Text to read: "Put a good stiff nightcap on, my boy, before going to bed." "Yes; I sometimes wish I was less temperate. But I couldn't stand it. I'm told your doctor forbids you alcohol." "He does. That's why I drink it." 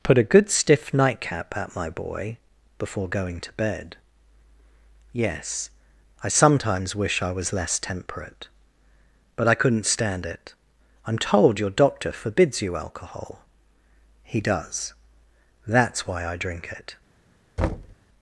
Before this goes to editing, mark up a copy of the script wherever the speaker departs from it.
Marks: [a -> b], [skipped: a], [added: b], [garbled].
"Put a good stiff nightcap [on, -> at] my boy, before going to bed." "Yes; I sometimes wish I was less temperate. But I couldn't stand it. I'm told your doctor forbids you alcohol." "He does. That's why I drink it."